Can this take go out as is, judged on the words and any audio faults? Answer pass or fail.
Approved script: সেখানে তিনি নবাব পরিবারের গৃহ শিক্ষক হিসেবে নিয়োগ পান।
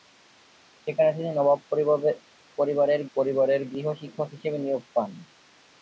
fail